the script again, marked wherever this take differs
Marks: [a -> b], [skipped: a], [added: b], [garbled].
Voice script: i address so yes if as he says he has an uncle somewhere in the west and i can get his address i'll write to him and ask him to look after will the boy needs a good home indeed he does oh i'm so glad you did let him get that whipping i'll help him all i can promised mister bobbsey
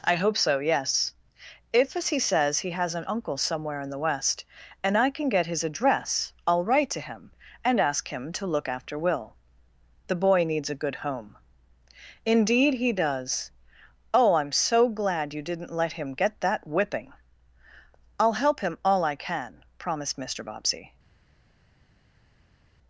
i [address -> hope] so yes if as he says he has an uncle somewhere in the west and i can get his address i'll write to him and ask him to look after will the boy needs a good home indeed he does oh i'm so glad you [did -> didn't] let him get that whipping i'll help him all i can promised mister bobbsey